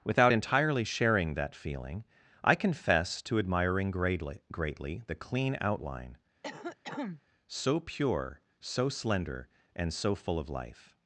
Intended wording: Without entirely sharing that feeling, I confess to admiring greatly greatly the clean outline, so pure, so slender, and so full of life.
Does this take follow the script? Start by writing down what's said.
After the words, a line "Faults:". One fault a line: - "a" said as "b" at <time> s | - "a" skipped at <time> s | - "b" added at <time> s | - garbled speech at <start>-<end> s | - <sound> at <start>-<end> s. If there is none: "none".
Without entirely sharing that feeling, I confess to admiring greatly greatly the clean outline, so pure, so slender, and so full of life.
Faults:
- cough at 6.4-7.2 s